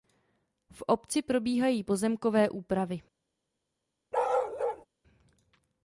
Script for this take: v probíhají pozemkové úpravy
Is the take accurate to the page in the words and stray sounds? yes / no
no